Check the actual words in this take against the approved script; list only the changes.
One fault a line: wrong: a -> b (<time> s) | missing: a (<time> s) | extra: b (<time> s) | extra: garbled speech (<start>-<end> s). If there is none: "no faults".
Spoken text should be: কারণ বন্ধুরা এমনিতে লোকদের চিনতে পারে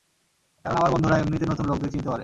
extra: আমার (0.8 s)
extra: নতুন (1.5 s)